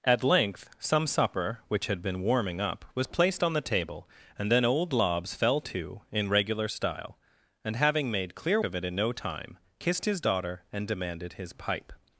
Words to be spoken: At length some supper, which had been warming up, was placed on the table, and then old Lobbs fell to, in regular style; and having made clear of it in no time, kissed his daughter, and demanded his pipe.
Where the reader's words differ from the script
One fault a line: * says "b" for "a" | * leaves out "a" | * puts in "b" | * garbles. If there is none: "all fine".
all fine